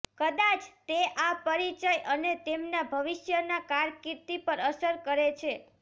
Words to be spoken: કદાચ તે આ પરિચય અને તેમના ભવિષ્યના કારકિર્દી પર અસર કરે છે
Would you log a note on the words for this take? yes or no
no